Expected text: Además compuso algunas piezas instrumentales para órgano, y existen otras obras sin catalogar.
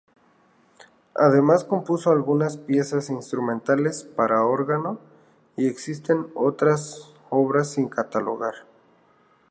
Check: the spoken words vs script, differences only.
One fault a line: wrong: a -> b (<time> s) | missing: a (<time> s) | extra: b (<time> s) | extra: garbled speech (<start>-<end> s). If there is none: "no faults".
no faults